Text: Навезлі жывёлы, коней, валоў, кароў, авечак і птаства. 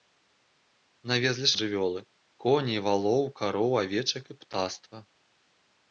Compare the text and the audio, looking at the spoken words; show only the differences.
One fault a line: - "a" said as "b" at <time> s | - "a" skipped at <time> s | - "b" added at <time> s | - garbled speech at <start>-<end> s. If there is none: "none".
none